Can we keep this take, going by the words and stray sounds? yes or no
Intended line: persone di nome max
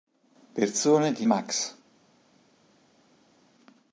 no